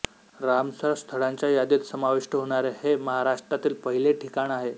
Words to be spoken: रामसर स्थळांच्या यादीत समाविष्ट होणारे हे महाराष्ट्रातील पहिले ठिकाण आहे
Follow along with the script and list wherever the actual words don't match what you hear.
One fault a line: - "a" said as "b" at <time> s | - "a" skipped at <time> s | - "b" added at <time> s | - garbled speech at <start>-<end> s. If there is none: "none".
none